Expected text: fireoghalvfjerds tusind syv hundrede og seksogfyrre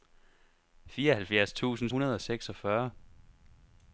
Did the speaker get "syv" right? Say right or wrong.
wrong